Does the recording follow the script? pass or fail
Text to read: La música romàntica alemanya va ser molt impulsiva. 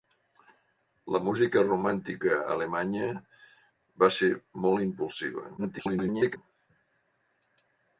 fail